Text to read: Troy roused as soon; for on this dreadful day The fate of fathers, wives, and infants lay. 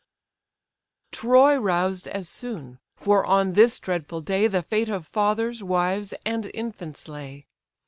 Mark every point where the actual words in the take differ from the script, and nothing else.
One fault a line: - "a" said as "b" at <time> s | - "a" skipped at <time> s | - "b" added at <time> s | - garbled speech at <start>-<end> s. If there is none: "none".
none